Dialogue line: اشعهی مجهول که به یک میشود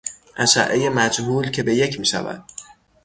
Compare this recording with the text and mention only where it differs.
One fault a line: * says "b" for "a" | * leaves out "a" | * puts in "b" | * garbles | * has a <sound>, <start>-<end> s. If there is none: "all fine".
all fine